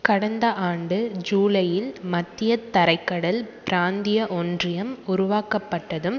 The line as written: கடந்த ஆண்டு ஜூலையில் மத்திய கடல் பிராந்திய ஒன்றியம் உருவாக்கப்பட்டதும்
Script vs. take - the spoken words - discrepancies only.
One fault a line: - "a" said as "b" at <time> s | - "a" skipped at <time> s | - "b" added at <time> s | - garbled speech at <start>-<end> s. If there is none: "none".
- "தரை" added at 2.7 s